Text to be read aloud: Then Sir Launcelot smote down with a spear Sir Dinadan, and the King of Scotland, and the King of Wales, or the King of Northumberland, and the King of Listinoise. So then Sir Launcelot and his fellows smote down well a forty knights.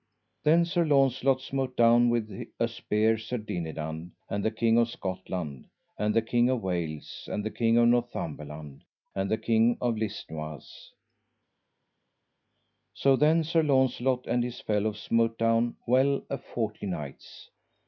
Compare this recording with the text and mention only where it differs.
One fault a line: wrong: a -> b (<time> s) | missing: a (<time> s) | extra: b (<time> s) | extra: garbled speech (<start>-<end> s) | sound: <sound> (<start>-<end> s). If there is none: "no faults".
wrong: or -> and (7.3 s)